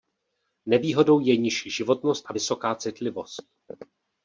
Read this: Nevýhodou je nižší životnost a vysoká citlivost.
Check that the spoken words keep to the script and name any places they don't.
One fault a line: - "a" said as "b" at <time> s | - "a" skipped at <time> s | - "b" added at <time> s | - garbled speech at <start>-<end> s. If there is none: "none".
none